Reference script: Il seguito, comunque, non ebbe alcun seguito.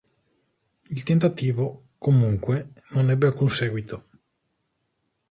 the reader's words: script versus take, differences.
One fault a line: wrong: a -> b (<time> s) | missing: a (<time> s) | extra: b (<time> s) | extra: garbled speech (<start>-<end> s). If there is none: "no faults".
wrong: seguito -> tentativo (1.0 s)